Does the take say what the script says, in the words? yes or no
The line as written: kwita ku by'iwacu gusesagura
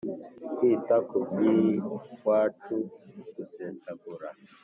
yes